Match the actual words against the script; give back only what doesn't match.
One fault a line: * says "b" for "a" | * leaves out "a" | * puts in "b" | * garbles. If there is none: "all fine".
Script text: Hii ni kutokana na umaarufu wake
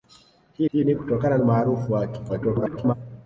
* puts in "hii"
* leaves out "na"
* garbles